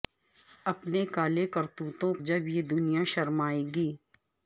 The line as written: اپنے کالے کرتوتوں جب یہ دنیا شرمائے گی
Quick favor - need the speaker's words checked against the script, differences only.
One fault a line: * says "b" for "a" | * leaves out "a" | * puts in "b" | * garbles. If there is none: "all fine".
all fine